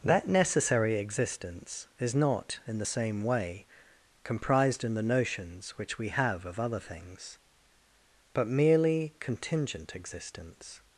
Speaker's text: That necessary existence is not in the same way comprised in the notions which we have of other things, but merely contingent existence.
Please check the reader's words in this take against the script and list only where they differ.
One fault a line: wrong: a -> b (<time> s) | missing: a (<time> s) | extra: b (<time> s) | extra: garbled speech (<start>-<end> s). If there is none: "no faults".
no faults